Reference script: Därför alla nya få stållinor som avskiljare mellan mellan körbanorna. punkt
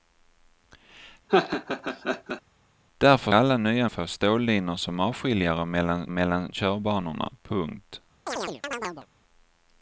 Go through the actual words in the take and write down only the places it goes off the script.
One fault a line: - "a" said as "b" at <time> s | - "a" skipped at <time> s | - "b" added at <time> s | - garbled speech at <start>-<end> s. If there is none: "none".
none